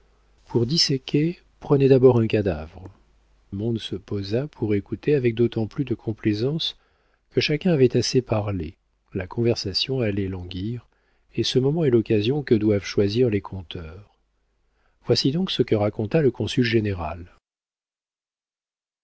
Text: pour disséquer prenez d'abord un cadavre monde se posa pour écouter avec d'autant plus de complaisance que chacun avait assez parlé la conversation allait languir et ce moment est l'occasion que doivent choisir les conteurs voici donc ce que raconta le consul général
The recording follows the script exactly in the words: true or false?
true